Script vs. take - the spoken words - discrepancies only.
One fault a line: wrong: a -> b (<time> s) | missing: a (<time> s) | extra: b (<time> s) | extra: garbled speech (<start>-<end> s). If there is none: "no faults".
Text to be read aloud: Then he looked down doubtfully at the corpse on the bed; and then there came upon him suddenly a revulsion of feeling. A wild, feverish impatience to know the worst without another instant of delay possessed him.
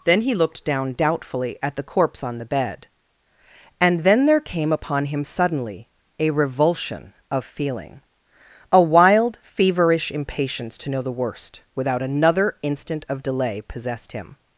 no faults